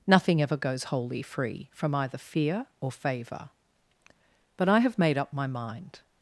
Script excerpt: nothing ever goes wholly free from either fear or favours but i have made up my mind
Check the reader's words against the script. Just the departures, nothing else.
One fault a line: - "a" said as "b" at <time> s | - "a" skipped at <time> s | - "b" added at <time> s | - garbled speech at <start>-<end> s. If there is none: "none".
- "favours" said as "favour" at 2.9 s